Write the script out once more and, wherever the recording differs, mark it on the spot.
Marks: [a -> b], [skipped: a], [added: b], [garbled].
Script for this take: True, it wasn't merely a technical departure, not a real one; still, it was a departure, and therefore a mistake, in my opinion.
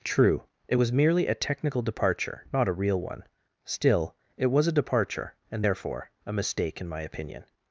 True, it [wasn't -> was] merely a technical departure, not a real one; still, it was a departure, and therefore a mistake, in my opinion.